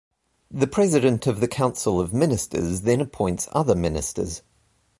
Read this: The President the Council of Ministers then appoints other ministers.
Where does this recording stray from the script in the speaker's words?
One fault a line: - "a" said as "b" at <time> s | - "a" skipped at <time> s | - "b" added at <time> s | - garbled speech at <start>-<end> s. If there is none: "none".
- "of" added at 1.3 s